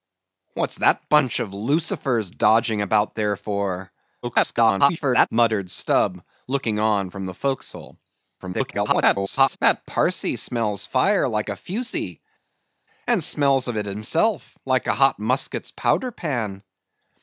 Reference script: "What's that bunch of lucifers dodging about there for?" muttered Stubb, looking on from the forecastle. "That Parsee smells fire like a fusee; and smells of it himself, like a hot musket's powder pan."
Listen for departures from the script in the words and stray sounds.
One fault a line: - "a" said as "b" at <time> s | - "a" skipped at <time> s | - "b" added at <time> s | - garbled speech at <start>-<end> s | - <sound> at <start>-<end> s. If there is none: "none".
- garbled speech at 4.2-5.3 s
- garbled speech at 8.4-9.6 s